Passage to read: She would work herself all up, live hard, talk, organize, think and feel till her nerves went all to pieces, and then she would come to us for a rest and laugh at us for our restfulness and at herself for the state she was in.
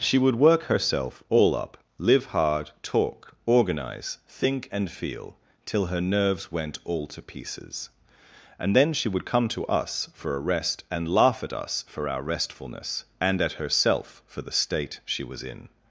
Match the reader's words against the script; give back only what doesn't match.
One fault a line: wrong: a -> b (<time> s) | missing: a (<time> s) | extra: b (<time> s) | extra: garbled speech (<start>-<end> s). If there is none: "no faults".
no faults